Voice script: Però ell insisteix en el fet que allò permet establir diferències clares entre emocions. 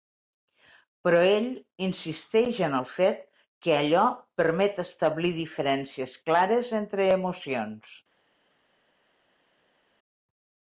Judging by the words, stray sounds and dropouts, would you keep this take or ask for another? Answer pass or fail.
pass